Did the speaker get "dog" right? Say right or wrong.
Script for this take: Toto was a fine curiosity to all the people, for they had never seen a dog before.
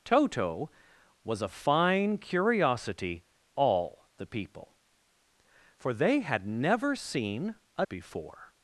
wrong